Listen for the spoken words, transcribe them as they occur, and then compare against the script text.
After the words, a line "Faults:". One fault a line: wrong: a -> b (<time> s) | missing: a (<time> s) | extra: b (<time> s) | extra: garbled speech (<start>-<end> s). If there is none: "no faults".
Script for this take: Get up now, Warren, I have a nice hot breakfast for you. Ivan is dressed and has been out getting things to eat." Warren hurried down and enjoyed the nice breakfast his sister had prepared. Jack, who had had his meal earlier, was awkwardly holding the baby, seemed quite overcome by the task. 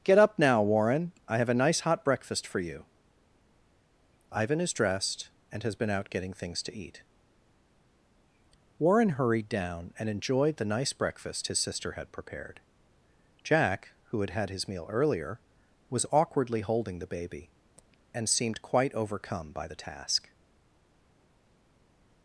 Get up now, Warren, I have a nice hot breakfast for you. Ivan is dressed and has been out getting things to eat." Warren hurried down and enjoyed the nice breakfast his sister had prepared. Jack, who had had his meal earlier, was awkwardly holding the baby, and seemed quite overcome by the task.
Faults:
extra: and (18.1 s)